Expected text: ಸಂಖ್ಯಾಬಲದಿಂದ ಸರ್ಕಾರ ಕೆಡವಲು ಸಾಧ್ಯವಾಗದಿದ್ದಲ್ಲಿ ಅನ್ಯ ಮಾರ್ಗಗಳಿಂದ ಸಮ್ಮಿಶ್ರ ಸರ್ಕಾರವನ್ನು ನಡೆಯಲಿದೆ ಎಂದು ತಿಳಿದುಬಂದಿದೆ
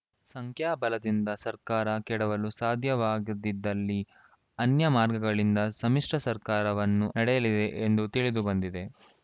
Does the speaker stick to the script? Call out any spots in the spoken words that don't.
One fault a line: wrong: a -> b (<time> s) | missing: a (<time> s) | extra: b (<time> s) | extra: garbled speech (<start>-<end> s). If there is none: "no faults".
no faults